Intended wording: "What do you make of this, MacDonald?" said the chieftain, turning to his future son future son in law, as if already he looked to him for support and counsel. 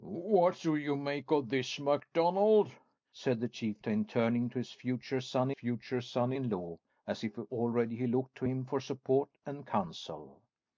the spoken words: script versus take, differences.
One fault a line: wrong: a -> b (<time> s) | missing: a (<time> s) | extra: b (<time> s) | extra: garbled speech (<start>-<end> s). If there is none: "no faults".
no faults